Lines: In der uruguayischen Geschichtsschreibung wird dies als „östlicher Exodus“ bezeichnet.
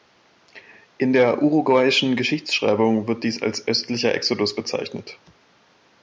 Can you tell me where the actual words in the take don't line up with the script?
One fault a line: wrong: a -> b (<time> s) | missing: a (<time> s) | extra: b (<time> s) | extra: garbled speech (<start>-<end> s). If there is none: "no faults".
no faults